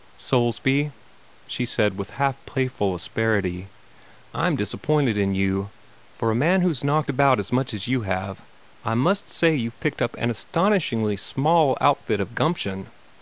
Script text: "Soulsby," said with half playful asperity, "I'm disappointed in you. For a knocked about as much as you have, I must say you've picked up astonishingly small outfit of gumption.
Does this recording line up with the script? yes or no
no